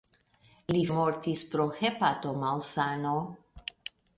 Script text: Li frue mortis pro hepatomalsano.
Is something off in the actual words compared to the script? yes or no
yes